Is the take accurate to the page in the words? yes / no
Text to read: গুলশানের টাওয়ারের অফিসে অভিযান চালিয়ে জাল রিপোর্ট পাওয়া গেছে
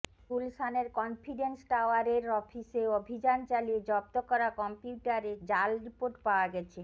no